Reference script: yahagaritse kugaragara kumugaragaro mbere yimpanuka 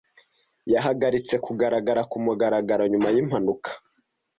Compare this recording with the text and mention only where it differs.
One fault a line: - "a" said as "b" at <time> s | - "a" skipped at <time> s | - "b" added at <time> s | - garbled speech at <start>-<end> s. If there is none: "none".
- "mbere" said as "nyuma" at 2.9 s